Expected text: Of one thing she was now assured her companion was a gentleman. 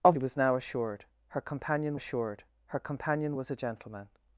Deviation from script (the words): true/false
true